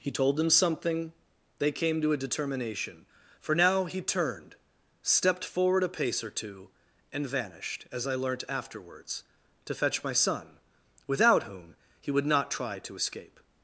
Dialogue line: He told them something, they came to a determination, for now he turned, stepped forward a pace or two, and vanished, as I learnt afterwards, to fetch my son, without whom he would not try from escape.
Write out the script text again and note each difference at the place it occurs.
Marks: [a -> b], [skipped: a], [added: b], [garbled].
He told them something, they came to a determination, for now he turned, stepped forward a pace or two, and vanished, as I learnt afterwards, to fetch my son, without whom he would not try [from -> to] escape.